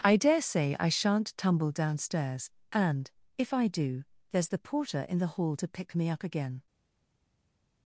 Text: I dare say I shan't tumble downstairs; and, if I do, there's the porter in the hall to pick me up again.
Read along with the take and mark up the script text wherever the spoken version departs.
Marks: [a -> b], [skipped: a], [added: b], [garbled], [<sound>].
I dare say I shan't tumble downstairs; and, if I do, there's the porter in the hall to pick me up again.